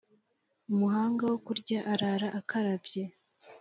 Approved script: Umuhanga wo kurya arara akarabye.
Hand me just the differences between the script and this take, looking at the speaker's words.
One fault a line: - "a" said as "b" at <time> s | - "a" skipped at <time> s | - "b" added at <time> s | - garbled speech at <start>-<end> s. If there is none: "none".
none